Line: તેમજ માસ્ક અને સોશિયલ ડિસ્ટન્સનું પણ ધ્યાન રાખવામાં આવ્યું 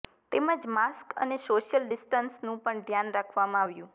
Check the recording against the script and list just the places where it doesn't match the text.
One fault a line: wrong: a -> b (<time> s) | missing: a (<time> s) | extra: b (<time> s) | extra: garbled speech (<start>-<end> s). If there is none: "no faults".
no faults